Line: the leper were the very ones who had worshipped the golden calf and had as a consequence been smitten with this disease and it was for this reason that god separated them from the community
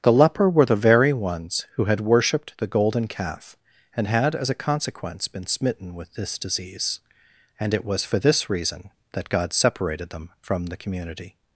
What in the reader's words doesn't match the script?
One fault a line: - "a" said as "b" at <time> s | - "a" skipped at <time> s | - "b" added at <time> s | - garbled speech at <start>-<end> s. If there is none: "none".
none